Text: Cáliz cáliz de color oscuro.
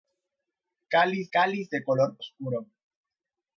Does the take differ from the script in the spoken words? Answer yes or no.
no